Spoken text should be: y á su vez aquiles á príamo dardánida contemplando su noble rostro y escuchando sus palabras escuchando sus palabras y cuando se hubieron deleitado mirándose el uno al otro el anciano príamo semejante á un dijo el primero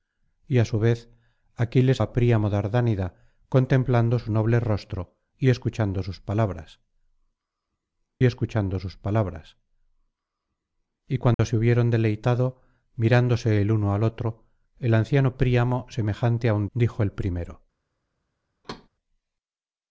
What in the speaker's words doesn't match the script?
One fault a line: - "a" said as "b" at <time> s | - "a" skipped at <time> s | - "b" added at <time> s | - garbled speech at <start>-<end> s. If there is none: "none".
none